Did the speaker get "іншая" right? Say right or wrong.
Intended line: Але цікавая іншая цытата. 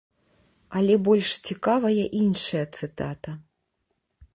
right